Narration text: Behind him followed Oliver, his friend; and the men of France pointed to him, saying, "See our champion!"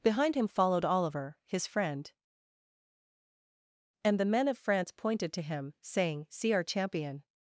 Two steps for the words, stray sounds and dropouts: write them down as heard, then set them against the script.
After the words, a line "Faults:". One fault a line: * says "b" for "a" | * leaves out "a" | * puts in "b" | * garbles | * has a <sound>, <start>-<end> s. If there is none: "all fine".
Behind him followed Oliver, his friend; and the men of France pointed to him, saying, "See our champion!"
Faults:
all fine